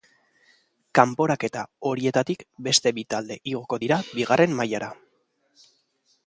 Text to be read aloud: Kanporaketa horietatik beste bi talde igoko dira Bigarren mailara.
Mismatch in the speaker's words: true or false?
false